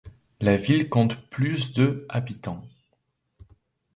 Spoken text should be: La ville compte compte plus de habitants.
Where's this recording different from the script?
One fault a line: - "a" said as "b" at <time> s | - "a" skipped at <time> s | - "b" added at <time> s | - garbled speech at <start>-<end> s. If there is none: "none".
- "compte" skipped at 1.3 s